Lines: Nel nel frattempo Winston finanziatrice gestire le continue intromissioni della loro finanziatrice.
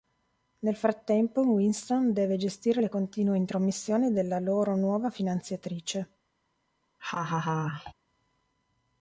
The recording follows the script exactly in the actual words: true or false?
false